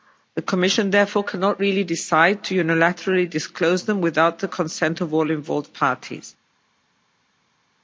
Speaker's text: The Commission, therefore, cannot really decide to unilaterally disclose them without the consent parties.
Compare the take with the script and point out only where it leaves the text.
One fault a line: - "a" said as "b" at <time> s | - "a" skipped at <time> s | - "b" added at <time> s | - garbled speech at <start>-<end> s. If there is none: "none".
- "of all involved" added at 5.0 s